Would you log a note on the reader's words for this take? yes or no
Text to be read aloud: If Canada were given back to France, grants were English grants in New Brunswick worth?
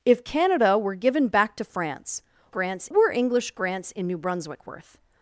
no